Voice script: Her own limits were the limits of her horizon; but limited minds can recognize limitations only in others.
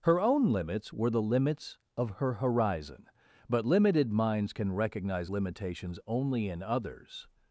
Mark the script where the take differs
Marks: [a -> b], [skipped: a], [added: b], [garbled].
Her own limits were the limits of her horizon; but limited minds can recognize limitations only in others.